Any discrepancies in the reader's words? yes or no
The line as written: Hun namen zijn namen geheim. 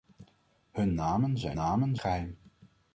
no